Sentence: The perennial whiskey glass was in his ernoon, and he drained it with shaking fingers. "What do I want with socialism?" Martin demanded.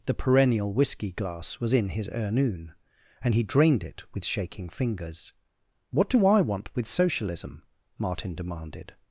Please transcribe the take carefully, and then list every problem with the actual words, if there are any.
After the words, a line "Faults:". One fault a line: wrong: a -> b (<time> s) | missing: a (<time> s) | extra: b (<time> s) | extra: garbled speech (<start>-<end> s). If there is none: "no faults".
The perennial whiskey glass was in his ernoon, and he drained it with shaking fingers. "What do I want with socialism?" Martin demanded.
Faults:
no faults